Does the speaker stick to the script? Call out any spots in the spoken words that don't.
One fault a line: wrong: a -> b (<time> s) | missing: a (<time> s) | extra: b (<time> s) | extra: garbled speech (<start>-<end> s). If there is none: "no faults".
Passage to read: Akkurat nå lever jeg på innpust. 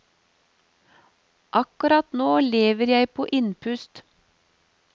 no faults